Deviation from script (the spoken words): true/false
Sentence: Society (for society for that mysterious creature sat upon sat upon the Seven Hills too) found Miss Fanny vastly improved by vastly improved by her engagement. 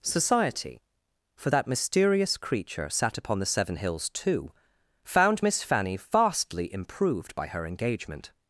true